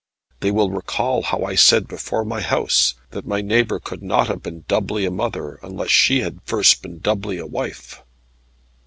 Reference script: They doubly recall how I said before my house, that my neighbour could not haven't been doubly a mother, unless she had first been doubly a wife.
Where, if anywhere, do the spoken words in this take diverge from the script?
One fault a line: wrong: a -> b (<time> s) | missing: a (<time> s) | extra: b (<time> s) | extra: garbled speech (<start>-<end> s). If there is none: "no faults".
wrong: doubly -> will (0.5 s)
wrong: haven't -> have (4.3 s)